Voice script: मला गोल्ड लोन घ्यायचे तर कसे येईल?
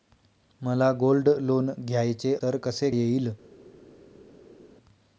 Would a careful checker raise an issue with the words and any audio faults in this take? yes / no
no